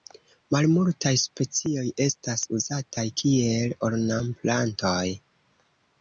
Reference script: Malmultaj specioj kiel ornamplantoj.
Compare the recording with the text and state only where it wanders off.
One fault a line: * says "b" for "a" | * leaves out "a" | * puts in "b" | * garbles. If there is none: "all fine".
* puts in "estas uzataj"